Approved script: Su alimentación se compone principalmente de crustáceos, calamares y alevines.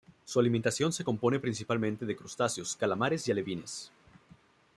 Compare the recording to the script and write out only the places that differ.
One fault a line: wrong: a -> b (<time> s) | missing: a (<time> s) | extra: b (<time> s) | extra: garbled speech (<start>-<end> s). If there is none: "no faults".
no faults